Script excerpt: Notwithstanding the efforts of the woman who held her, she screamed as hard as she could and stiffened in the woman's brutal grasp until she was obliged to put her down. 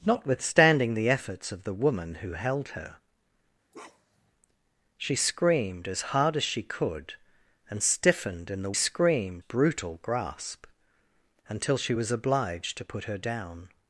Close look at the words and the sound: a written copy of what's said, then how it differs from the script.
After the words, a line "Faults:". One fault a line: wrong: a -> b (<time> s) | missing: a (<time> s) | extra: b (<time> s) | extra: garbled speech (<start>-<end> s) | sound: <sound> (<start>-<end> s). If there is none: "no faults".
Notwithstanding the efforts of the woman who held her, she screamed as hard as she could and stiffened in the screamed brutal grasp until she was obliged to put her down.
Faults:
sound: bark (3.7-4.3 s)
wrong: woman's -> screamed (8.7 s)